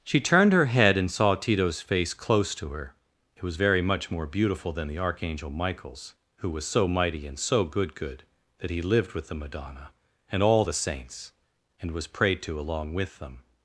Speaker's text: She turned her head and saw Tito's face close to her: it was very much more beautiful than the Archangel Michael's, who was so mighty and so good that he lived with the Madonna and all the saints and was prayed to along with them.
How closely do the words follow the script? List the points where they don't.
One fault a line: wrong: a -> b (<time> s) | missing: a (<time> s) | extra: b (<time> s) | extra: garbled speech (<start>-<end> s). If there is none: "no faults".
extra: good (8.0 s)